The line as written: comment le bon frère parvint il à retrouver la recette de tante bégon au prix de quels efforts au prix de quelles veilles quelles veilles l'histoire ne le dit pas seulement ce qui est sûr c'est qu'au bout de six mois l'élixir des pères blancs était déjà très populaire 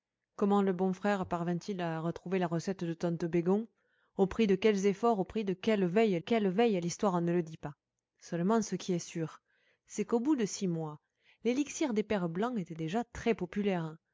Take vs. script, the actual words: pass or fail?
pass